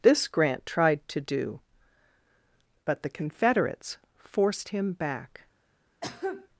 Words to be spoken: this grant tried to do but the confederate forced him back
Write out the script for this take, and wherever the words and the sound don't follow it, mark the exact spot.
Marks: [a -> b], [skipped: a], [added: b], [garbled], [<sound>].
this grant tried to do but the [confederate -> confederates] forced him back [cough]